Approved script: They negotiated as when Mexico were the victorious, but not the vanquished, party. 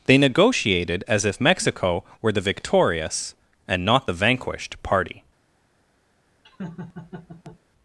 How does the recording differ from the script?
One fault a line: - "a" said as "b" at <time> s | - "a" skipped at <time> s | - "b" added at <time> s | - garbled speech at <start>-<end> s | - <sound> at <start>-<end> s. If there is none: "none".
- "when" said as "if" at 1.2 s
- "but" said as "and" at 3.7 s
- laugh at 6.4-7.6 s